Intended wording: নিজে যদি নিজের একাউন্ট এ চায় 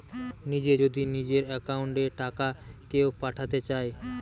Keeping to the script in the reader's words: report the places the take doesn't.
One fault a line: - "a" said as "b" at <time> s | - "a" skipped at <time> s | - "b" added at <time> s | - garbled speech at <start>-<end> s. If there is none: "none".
- "টাকা কেও পাঠাতে" added at 2.2 s